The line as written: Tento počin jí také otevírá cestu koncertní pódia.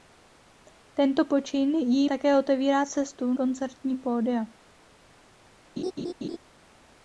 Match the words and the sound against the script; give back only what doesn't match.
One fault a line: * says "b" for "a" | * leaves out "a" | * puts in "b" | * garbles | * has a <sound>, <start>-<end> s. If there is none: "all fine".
* has a laugh, 5.8-6.4 s